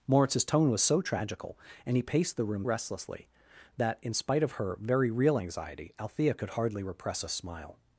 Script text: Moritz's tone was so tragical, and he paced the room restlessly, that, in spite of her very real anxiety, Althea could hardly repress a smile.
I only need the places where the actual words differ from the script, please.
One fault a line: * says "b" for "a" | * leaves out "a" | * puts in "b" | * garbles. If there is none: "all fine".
all fine